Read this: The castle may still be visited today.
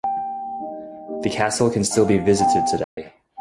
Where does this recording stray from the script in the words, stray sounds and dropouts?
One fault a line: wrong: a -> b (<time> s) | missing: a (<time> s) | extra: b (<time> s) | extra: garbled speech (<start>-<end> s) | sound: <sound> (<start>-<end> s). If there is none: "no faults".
wrong: may -> can (1.7 s)
sound: dropout (2.8-3.0 s)